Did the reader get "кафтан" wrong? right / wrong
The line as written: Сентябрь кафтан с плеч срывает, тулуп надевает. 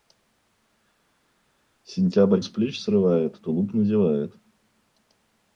wrong